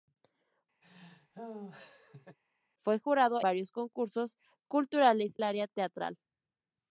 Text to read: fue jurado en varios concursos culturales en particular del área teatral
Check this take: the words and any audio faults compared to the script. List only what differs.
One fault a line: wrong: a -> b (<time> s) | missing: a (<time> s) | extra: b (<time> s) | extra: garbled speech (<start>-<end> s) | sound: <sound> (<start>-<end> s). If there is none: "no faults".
sound: laugh (0.8-2.4 s)
missing: en (3.4 s)
missing: en particular del (5.4 s)